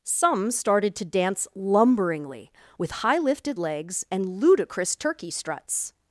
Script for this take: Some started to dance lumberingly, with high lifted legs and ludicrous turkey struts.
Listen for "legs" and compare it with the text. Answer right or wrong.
right